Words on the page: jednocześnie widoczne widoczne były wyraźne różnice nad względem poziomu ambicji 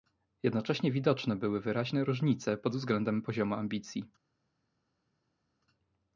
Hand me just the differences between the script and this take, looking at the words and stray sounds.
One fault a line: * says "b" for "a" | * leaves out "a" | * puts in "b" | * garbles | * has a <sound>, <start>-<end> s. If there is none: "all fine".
* leaves out "widoczne"
* says "pod" for "nad"